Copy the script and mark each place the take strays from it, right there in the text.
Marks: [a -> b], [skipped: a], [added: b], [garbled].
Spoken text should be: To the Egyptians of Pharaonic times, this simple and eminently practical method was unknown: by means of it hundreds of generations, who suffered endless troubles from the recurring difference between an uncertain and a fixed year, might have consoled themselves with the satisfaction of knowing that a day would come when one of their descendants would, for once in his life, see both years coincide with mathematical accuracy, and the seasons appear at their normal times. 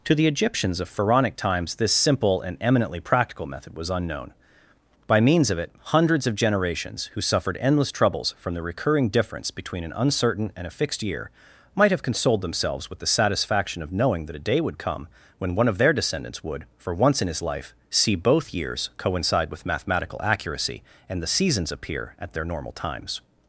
To the Egyptians of Pharaonic times, this simple and eminently practical method was unknown: by means of it hundreds of generations, who suffered endless troubles from the recurring difference between an uncertain and a fixed year, might have consoled themselves with the satisfaction of knowing that a day would come when one of their descendants would, for once in his life, see both years coincide with mathematical accuracy, and the seasons appear at their normal times.